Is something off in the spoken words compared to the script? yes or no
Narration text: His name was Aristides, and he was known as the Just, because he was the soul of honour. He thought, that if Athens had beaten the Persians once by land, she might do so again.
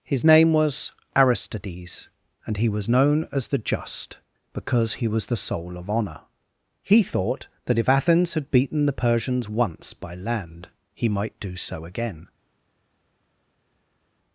yes